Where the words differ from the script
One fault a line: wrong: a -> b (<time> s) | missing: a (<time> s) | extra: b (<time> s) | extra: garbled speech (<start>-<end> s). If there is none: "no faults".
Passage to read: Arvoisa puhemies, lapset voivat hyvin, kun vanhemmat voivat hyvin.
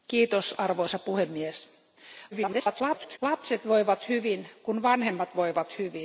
extra: garbled speech (2.3-3.2 s)